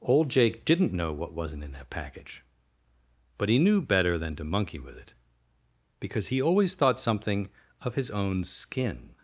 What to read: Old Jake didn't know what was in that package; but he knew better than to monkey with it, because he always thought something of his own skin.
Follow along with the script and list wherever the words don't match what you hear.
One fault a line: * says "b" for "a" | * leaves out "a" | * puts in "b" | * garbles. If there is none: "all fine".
* says "wasn't" for "was"